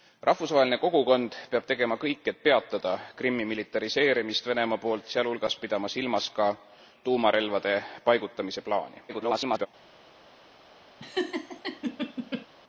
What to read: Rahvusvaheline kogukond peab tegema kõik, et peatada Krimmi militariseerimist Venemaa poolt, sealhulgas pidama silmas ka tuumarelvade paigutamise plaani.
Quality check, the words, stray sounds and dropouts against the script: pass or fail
fail